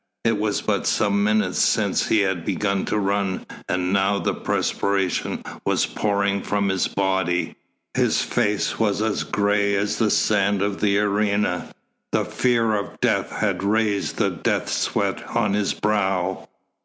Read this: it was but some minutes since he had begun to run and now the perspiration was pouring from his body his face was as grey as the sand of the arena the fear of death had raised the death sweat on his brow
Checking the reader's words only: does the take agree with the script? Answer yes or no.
yes